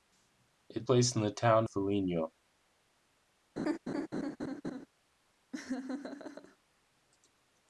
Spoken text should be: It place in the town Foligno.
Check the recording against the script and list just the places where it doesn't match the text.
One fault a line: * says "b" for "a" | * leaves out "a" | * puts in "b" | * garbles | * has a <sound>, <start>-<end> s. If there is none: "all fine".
* has a laugh, 3.6-4.9 s
* has a laugh, 5.5-6.6 s